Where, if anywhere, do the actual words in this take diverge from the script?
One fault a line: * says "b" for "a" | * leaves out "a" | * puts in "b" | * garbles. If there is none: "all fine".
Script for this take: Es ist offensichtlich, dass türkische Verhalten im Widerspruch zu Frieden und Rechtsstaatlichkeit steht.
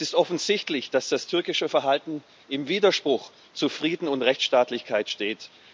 * puts in "das"